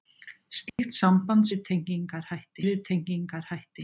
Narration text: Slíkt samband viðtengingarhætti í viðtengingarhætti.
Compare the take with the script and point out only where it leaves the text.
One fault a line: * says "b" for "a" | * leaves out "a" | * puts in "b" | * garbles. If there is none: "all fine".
all fine